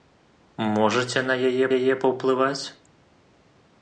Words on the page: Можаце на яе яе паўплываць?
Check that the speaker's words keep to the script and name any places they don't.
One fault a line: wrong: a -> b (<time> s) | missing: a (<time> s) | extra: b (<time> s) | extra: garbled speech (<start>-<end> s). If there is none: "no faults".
no faults